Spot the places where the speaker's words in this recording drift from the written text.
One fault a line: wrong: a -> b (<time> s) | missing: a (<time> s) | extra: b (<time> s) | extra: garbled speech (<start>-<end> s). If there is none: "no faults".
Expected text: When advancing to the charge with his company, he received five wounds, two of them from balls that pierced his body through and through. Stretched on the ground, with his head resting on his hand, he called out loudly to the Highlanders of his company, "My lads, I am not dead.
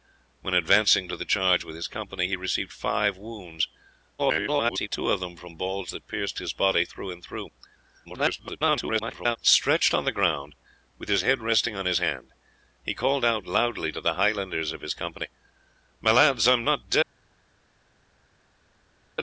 extra: garbled speech (4.2-4.9 s)
extra: garbled speech (8.0-9.4 s)